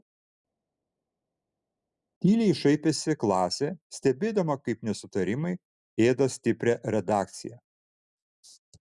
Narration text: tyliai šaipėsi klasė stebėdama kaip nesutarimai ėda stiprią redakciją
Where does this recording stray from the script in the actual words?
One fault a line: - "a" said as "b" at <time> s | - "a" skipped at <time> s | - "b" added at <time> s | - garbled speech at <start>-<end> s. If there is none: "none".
none